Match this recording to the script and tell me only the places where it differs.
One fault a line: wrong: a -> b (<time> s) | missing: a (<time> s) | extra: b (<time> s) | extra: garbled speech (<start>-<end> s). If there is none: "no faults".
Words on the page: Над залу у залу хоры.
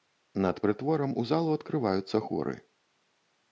wrong: залу -> прытворам (0.7 s)
extra: адкрываюцца (1.6 s)